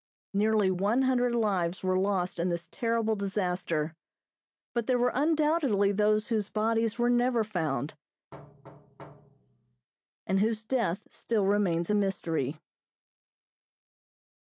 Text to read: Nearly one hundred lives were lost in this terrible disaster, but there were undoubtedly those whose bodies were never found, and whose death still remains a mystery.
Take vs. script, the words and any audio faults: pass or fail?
fail